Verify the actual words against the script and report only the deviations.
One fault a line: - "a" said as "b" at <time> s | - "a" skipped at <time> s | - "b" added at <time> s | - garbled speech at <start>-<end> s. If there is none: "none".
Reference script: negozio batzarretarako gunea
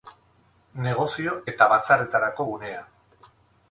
- "eta" added at 1.5 s